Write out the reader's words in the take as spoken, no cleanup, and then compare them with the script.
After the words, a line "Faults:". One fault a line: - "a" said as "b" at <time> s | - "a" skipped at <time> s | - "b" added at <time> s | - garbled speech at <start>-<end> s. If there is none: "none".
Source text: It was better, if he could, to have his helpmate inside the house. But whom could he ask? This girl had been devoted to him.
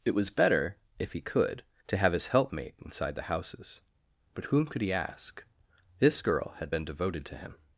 It was better, if he could, to have his helpmate inside the houses. But whom could he ask? This girl had been devoted to him.
Faults:
- "house" said as "houses" at 3.2 s